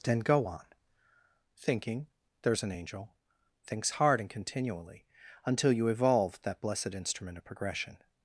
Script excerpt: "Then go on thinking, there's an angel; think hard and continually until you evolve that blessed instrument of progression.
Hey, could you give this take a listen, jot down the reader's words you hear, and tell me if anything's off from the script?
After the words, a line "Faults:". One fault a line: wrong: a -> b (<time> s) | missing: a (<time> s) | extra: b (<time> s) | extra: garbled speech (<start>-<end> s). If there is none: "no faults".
"Then go on thinking, there's an angel; thinks hard and continually until you evolve that blessed instrument of progression.
Faults:
wrong: think -> thinks (3.7 s)